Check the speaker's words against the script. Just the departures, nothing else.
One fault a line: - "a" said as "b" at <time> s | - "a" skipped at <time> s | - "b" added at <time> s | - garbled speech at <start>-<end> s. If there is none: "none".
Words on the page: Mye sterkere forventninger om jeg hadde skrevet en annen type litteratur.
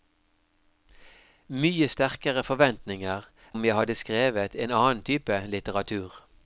none